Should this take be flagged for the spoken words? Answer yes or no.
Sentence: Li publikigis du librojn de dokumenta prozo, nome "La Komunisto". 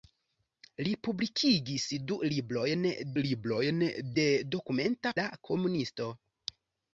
yes